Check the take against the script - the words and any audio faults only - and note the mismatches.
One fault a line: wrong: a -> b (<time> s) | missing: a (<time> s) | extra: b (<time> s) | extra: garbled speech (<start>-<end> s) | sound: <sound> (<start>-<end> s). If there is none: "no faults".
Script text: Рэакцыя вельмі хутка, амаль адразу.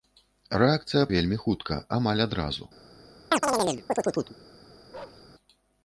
sound: chirp (3.3-4.4 s)
sound: bark (4.9-5.3 s)